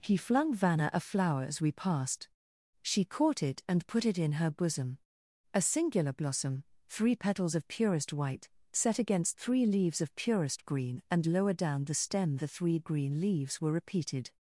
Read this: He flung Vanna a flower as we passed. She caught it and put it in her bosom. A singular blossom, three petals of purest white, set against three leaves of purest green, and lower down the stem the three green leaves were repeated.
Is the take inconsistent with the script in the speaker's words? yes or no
no